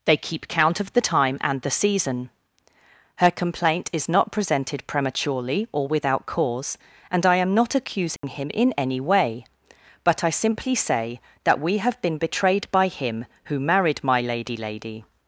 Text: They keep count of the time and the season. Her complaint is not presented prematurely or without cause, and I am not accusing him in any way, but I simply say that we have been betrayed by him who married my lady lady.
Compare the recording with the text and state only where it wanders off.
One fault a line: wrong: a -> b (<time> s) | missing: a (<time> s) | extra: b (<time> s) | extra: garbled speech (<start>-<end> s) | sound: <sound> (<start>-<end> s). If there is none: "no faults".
sound: dropout (8.2-8.2 s)